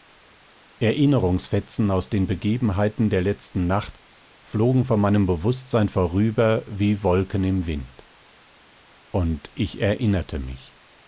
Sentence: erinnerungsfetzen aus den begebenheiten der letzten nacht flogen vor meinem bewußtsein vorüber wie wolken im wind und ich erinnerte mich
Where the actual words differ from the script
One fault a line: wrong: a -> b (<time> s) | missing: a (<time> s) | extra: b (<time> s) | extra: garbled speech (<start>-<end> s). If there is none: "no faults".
no faults